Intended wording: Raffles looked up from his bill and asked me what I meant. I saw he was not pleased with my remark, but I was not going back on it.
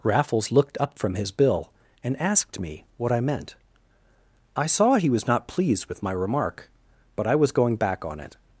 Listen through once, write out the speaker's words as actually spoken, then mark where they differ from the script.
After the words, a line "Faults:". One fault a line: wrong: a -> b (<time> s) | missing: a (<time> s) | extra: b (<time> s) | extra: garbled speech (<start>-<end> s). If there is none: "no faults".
Raffles looked up from his bill and asked me what I meant. I saw he was not pleased with my remark, but I was going back on it.
Faults:
missing: not (7.5 s)